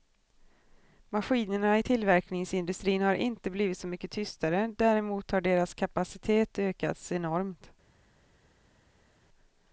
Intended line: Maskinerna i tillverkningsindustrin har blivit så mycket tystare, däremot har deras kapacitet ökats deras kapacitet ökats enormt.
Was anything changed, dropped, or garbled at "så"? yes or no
no